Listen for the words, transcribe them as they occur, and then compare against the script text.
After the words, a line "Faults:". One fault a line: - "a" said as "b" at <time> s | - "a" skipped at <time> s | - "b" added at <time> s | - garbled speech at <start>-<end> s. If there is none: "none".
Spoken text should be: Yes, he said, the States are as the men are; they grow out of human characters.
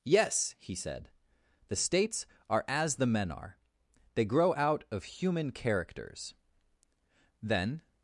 Yes, he said, the States are as the men are; they grow out of human characters. Then
Faults:
- "Then" added at 7.4 s